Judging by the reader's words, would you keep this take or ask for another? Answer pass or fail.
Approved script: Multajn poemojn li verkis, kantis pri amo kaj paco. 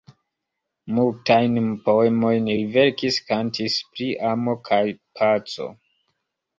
pass